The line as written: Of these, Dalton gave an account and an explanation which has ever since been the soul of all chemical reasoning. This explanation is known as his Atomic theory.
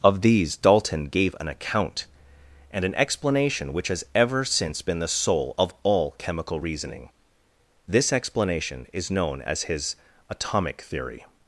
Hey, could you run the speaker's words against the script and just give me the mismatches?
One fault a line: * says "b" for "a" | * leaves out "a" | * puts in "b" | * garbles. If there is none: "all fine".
all fine